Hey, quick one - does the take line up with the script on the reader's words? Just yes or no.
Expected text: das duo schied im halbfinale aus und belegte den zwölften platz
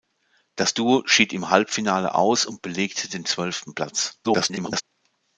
no